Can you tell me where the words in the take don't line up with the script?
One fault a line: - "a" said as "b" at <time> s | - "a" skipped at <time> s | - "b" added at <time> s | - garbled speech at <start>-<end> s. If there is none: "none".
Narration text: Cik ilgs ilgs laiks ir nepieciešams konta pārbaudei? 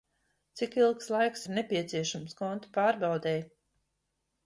- "ilgs" skipped at 1.1 s